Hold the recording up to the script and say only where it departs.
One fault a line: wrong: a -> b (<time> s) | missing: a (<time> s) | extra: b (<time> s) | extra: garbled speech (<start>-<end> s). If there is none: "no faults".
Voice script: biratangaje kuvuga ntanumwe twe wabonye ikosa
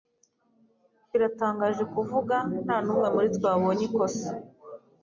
extra: muri (3.1 s)